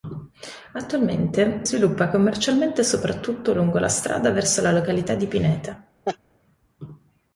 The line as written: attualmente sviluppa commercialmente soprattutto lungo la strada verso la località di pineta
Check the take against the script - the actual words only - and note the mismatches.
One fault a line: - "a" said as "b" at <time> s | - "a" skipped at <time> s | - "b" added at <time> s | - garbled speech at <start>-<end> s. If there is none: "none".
none